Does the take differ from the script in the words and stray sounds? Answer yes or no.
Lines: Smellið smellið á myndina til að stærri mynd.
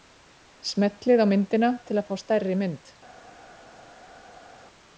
yes